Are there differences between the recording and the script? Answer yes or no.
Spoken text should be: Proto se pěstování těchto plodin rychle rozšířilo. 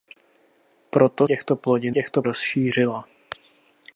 yes